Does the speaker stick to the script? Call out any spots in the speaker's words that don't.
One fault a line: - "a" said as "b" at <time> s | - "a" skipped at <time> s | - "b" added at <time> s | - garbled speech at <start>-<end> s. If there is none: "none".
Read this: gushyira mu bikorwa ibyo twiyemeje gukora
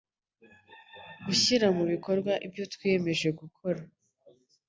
none